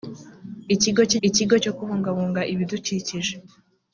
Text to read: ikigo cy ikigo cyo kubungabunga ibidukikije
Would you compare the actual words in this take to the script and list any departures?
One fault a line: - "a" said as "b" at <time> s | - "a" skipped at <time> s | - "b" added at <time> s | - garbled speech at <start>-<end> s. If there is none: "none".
none